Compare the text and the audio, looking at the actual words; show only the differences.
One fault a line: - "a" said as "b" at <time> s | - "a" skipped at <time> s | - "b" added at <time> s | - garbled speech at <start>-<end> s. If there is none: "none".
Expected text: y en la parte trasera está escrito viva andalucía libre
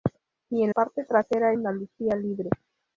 - "la" skipped at 0.7 s
- "está escrito viva" skipped at 1.5 s